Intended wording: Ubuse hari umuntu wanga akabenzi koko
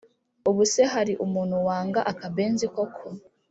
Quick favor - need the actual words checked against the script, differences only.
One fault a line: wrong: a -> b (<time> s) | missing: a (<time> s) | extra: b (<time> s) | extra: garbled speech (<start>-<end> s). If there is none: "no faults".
no faults